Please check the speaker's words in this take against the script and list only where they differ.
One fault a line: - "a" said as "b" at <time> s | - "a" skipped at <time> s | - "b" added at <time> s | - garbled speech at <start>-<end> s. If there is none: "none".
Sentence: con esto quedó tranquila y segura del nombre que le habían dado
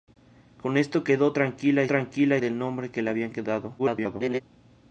- "segura" said as "tranquila" at 1.8 s
- garbled speech at 3.8-4.4 s